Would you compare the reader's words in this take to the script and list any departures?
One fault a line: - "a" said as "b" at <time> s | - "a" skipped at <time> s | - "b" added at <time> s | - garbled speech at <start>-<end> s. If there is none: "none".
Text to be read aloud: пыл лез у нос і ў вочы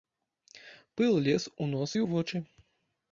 none